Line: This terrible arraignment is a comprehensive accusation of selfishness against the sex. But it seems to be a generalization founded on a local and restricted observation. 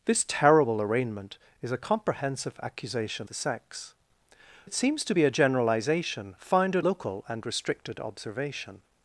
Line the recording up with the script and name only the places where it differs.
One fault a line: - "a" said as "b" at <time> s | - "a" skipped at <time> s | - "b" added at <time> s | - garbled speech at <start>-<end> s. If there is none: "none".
- "of selfishness against" skipped at 3.3 s
- "But" skipped at 3.9 s
- "on a" skipped at 6.9 s